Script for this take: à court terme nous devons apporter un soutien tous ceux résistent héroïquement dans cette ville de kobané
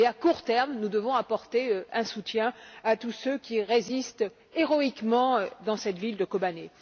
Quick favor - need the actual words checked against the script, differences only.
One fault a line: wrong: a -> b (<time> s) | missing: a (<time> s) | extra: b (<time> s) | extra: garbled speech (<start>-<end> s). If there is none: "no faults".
extra: à (2.8 s)
extra: qui (3.4 s)